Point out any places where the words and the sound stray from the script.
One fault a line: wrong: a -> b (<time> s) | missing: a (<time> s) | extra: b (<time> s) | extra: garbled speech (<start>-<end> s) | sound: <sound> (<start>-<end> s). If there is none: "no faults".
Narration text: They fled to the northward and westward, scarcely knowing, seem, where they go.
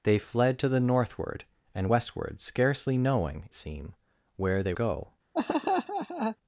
sound: laugh (5.3-6.4 s)